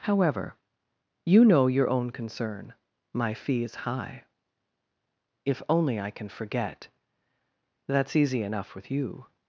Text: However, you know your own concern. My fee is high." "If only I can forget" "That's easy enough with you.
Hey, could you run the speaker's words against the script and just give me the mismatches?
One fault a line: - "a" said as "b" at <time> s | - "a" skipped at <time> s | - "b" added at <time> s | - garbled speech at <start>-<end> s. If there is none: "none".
none